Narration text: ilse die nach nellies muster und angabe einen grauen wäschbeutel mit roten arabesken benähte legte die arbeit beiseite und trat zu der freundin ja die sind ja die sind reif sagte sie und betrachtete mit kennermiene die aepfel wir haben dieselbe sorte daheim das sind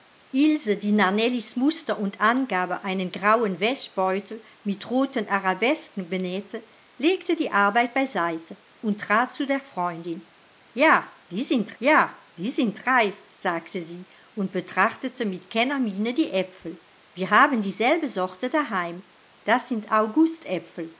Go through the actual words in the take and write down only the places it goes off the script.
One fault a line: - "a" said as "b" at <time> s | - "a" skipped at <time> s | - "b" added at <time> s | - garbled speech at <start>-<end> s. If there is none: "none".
none